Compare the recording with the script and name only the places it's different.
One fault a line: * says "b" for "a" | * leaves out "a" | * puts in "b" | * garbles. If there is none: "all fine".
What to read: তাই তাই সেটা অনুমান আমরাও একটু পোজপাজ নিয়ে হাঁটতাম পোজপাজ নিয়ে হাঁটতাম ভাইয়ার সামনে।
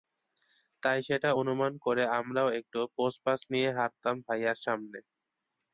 * leaves out "তাই"
* puts in "করে"
* leaves out "পোজপাজ নিয়ে হাঁটতাম"